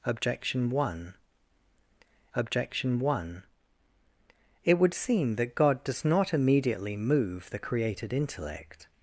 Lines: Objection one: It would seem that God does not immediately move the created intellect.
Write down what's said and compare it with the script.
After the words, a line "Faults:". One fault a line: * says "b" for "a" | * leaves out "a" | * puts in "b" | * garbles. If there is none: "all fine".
Objection one objection one: It would seem that God does not immediately move the created intellect.
Faults:
* puts in "objection one"